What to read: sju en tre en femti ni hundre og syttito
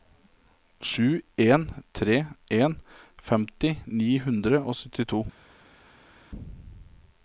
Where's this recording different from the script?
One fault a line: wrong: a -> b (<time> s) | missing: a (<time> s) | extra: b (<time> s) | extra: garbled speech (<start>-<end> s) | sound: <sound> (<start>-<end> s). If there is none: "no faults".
no faults